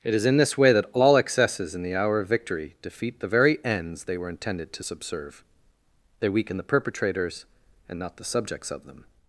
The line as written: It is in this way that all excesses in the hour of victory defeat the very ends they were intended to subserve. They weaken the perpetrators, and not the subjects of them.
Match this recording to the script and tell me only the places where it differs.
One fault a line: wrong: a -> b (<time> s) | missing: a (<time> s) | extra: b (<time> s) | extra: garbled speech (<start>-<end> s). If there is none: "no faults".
no faults